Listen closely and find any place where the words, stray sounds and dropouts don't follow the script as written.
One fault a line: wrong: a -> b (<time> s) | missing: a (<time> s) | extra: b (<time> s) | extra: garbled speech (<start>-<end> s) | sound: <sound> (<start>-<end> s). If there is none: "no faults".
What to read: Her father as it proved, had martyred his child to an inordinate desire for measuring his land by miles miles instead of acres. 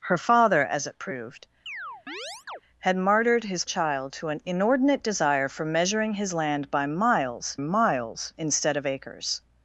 sound: chirp (1.7-2.6 s)